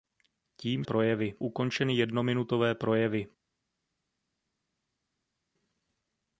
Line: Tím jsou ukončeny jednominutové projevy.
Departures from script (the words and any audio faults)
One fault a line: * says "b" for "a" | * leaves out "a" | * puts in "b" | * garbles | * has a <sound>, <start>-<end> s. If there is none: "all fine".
* says "projevy" for "jsou"